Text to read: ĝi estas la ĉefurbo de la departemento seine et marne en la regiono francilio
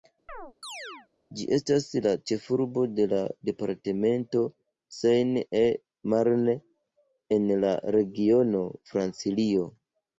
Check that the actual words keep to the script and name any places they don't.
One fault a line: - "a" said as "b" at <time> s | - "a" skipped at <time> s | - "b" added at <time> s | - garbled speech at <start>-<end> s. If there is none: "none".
none